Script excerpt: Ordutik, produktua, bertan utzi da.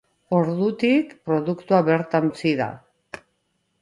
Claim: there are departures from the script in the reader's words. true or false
false